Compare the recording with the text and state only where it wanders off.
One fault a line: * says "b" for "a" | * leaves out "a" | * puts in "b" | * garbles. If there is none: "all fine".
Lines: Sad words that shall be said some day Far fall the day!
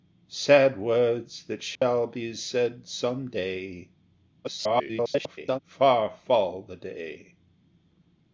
* garbles